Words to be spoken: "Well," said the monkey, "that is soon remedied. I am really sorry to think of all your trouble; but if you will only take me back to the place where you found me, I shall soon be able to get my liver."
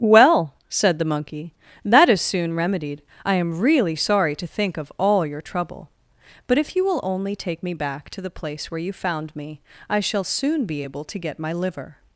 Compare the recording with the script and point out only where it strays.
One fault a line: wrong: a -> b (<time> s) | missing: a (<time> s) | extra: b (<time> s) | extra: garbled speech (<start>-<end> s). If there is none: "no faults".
no faults